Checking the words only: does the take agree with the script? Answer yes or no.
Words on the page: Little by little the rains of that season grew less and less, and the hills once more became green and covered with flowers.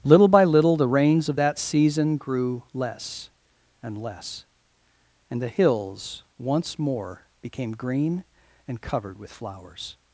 yes